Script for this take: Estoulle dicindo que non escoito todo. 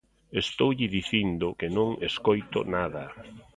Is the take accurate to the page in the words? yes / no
no